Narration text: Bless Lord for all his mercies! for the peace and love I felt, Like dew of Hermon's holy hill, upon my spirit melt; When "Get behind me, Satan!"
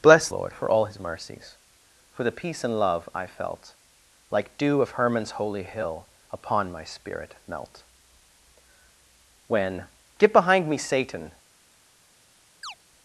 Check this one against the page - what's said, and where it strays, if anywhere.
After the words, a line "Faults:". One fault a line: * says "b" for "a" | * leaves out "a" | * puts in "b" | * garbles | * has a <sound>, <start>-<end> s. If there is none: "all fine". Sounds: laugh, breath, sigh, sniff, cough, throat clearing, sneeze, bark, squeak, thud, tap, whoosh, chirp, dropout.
Bless Lord for all his mercies! for the peace and love I felt, Like dew of Hermon's holy hill, upon my spirit melt; When "Get behind me, Satan!"
Faults:
* has a chirp, 12.6-12.8 s